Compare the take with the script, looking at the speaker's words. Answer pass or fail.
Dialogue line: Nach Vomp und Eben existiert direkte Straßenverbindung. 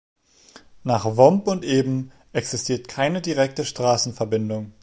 fail